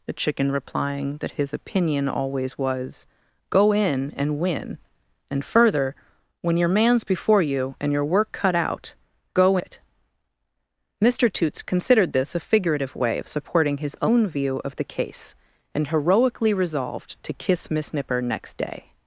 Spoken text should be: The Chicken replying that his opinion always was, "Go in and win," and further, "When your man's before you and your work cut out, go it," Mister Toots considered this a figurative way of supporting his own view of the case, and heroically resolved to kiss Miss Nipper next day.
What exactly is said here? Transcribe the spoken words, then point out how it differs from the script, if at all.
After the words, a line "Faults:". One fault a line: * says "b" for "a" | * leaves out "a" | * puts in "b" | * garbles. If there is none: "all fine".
The Chicken replying that his opinion always was, "Go in and win," and further, "When your man's before you and your work cut out, go it," Mister Toots considered this a figurative way of supporting his own view of the case, and heroically resolved to kiss Miss Nipper next day.
Faults:
all fine